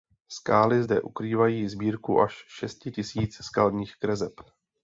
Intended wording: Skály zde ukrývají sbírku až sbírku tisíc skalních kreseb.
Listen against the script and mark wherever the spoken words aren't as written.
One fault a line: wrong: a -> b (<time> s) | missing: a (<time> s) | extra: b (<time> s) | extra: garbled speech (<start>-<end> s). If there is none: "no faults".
wrong: sbírku -> šesti (2.5 s)